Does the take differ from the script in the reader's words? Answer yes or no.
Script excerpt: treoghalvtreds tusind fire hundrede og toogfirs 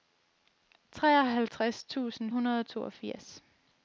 yes